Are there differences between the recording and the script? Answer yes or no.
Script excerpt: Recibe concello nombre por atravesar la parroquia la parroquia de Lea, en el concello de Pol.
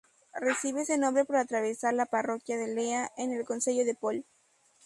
yes